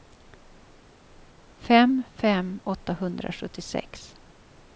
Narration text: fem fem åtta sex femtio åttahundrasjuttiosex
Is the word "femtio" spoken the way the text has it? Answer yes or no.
no